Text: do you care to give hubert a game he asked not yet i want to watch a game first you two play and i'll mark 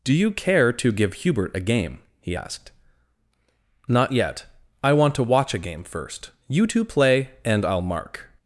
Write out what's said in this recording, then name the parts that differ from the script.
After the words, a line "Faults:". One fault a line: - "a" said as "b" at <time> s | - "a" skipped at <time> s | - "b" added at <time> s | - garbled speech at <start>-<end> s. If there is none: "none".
do you care to give hubert a game he asked not yet i want to watch a game first you two play and i'll mark
Faults:
none